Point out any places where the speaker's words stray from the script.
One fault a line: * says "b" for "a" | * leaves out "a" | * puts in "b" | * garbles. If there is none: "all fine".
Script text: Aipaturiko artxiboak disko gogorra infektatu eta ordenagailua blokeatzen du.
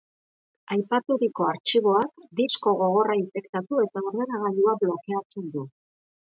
all fine